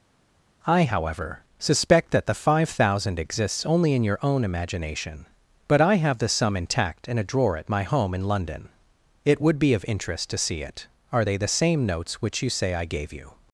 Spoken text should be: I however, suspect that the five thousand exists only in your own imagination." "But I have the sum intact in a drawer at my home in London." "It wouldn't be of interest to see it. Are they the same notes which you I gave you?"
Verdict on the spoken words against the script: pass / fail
fail